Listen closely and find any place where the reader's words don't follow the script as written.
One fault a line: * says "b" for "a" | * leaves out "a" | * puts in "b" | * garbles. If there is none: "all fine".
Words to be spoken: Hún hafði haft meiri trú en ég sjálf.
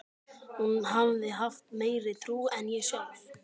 all fine